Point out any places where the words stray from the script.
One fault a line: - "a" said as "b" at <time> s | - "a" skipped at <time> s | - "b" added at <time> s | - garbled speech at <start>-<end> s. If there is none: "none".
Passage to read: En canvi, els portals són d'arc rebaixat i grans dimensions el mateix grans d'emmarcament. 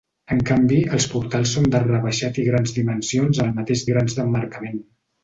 none